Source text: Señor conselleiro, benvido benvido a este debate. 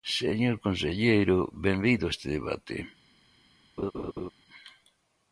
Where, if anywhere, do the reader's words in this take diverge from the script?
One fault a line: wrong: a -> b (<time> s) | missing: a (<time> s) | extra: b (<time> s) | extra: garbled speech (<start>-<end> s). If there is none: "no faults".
missing: benvido (2.1 s)